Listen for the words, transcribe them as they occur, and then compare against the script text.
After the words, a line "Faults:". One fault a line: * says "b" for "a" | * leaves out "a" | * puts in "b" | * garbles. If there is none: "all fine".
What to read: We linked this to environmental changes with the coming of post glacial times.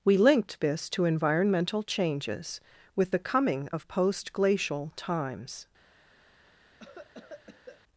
We linked this to environmental changes with the coming of post glacial times.
Faults:
all fine